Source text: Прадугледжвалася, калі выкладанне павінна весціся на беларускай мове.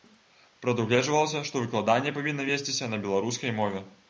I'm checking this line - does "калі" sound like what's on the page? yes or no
no